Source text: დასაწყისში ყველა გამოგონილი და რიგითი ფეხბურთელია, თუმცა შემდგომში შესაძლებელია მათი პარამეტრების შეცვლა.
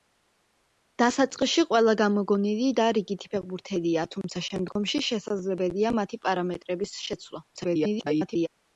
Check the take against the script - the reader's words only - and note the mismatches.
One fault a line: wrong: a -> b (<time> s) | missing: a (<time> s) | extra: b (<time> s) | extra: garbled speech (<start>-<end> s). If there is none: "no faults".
extra: garbled speech (7.5-8.5 s)